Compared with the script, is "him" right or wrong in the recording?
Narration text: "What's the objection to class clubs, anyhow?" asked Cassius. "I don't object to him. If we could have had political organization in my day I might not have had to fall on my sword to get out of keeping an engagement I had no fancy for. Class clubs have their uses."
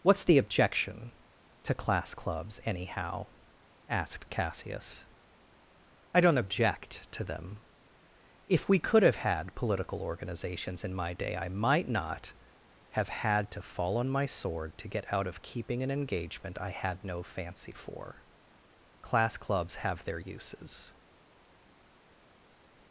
wrong